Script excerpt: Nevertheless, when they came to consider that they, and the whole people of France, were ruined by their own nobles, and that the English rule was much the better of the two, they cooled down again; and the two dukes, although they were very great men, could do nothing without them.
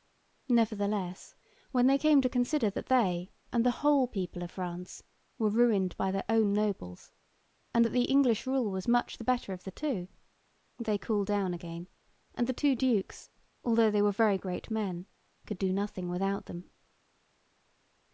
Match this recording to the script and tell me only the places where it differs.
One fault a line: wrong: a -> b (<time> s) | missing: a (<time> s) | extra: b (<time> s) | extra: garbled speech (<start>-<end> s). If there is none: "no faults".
no faults